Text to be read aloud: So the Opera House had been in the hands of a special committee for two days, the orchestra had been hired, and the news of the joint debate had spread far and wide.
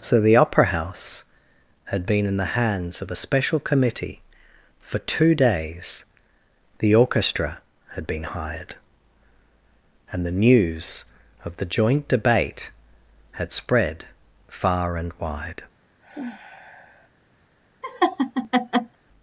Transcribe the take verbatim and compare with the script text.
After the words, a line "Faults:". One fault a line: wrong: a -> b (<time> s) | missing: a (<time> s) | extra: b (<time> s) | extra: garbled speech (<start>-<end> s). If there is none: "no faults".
So the Opera House had been in the hands of a special committee for two days, the orchestra had been hired, and the news of the joint debate had spread far and wide.
Faults:
no faults